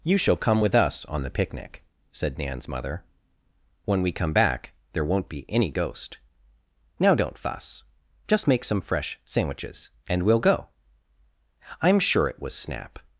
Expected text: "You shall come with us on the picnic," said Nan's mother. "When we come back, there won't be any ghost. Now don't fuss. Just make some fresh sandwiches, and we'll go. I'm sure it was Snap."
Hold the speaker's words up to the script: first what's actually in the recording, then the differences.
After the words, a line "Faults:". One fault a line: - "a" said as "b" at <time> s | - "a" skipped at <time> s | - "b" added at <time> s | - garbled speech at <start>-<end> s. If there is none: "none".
"You shall come with us on the picnic," said Nan's mother. "When we come back, there won't be any ghost. Now don't fuss. Just make some fresh sandwiches, and we'll go. I'm sure it was Snap."
Faults:
none